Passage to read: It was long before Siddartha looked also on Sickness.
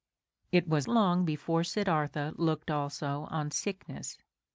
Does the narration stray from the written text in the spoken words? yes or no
no